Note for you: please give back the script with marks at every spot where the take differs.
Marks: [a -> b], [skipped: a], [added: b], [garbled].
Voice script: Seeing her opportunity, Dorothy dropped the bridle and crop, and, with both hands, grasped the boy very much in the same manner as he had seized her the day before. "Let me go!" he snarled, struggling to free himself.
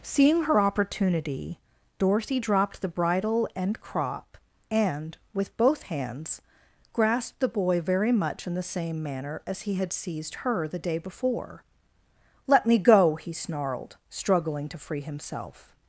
Seeing her opportunity, Dorothy dropped the bridle and crop, and, with both hands, grasped the boy very much in the same manner as he had seized her the day before. "Let me go!" he snarled, struggling to free himself.